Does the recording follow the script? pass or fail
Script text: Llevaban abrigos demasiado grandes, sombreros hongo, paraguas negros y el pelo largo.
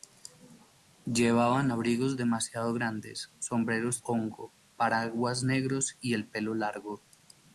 pass